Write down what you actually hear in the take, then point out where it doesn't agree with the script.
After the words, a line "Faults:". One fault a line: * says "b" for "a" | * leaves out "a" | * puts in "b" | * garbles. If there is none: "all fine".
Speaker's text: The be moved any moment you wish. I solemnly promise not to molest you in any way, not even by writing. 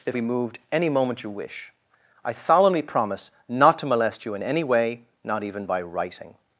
The be moved any moment you wish. I solemnly promise not to molest you in any way, not even by writing.
Faults:
all fine